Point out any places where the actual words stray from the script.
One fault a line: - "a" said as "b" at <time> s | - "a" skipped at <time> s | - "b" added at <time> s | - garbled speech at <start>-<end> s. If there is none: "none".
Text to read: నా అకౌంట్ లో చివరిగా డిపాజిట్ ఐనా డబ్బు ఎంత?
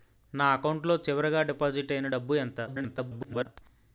- garbled speech at 2.7-3.5 s